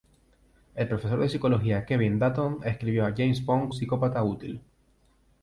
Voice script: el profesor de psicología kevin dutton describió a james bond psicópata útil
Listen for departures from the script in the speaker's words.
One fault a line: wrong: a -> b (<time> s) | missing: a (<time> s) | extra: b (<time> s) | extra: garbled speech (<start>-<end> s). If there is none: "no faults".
no faults